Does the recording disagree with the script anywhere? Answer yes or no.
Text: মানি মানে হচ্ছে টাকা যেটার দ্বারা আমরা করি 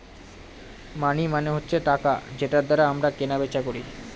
yes